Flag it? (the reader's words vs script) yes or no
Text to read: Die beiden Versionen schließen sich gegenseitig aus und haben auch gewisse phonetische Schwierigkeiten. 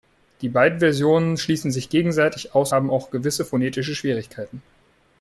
yes